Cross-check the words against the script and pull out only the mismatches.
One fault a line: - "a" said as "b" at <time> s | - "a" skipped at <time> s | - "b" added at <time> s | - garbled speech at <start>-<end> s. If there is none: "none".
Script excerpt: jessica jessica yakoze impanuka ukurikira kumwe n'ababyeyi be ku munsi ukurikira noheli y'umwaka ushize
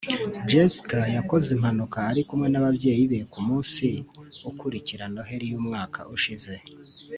- "jessica" skipped at 1.0 s
- "ukurikira" said as "ari" at 2.1 s